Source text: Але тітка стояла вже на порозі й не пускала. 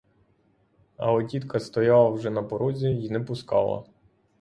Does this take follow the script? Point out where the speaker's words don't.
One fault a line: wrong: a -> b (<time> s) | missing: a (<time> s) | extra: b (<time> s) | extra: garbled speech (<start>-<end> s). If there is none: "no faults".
no faults